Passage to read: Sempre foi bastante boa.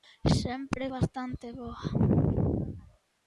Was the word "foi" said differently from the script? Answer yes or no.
yes